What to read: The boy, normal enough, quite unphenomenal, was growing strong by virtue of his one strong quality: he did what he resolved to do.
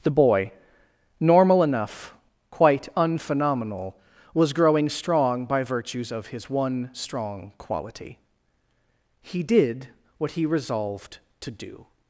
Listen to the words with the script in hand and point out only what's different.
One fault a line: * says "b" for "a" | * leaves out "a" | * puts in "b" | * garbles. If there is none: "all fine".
* says "virtues" for "virtue"